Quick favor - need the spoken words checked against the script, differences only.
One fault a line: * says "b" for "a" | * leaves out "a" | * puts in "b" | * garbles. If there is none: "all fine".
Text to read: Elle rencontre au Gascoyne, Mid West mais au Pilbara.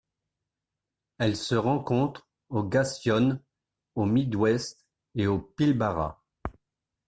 * puts in "se"
* puts in "au"
* says "et" for "mais"